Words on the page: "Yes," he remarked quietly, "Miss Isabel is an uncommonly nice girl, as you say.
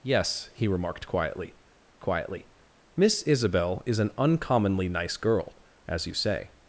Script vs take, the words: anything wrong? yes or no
yes